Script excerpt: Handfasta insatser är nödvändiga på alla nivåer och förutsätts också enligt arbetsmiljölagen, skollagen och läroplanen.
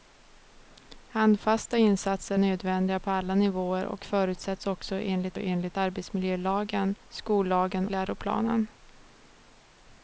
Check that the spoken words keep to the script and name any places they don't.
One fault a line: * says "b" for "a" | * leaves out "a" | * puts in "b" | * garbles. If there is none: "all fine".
* leaves out "är"
* puts in "enligt"
* leaves out "och"